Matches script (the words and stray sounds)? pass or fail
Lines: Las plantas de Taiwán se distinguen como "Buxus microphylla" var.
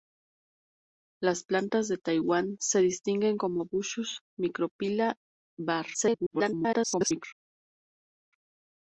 fail